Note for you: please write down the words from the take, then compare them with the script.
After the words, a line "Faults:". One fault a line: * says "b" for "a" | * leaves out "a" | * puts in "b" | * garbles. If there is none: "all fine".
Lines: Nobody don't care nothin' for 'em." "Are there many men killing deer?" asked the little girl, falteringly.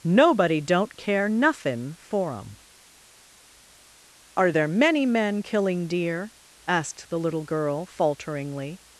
Nobody don't care nothin' for 'em." "Are there many men killing deer?" asked the little girl, falteringly.
Faults:
all fine